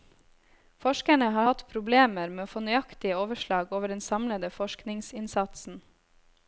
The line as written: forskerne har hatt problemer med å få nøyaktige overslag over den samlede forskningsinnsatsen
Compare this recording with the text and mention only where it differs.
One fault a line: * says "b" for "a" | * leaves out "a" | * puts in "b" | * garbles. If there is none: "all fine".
all fine